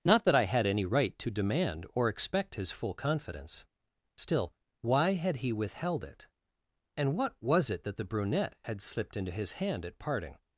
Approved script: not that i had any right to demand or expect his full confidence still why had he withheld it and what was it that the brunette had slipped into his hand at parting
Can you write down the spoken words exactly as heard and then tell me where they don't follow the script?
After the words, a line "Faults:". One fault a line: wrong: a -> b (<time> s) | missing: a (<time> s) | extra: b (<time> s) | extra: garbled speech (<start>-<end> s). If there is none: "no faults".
not that i had any right to demand or expect his full confidence still why had he withheld it and what was it that the brunette had slipped into his hand at parting
Faults:
no faults